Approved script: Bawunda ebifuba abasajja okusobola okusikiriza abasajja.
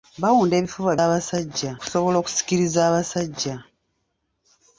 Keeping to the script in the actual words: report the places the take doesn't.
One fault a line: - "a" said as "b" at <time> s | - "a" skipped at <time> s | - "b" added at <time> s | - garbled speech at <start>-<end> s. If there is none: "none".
none